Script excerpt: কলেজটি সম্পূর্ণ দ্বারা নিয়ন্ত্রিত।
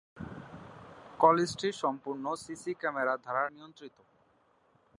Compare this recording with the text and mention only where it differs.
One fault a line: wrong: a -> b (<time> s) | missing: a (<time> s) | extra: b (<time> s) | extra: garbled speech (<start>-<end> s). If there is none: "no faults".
extra: সিসি ক্যামেরা (2.4 s)